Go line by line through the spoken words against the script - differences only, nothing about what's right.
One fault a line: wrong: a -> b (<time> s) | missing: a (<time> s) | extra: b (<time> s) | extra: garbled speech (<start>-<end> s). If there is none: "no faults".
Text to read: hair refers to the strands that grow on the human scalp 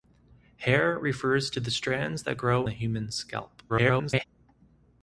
missing: on (2.7 s)
extra: garbled speech (3.7-4.3 s)